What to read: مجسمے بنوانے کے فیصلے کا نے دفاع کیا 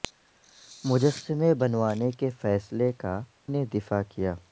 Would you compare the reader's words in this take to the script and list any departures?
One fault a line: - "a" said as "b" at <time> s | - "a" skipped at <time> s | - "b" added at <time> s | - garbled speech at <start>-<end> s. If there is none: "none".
none